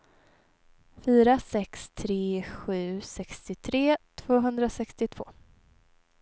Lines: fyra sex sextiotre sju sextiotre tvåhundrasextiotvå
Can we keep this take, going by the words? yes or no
no